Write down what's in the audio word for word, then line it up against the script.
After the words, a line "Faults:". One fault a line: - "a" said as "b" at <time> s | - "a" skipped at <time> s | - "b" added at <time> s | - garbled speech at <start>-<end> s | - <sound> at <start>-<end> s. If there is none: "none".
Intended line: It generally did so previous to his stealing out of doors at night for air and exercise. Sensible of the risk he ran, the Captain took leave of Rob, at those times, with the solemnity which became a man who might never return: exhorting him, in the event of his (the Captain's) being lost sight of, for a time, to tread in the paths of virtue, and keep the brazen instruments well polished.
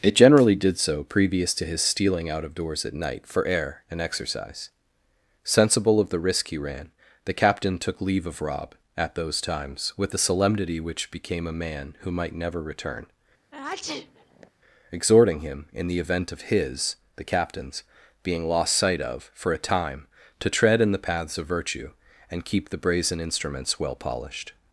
It generally did so previous to his stealing out of doors at night for air and exercise. Sensible of the risk he ran, the Captain took leave of Rob, at those times, with the solemnity which became a man who might never return: exhorting him, in the event of his (the Captain's) being lost sight of, for a time, to tread in the paths of virtue, and keep the brazen instruments well polished.
Faults:
- sneeze at 13.5-14.5 s